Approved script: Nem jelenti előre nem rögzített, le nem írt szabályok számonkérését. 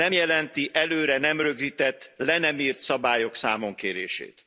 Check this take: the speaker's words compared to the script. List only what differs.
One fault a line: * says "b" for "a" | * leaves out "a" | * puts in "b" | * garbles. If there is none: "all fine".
all fine